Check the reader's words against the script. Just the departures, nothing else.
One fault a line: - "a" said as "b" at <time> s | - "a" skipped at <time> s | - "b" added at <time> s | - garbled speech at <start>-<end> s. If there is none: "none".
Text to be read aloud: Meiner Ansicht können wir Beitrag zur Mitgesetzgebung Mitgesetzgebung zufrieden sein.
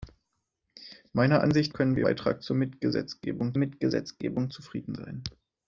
none